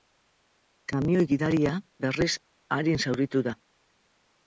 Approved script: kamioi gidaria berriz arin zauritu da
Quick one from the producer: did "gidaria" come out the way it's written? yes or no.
yes